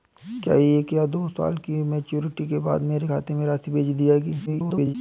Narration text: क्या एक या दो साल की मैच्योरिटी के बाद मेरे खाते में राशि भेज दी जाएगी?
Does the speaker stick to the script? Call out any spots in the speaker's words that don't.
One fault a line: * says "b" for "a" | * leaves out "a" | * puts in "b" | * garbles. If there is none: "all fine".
* garbles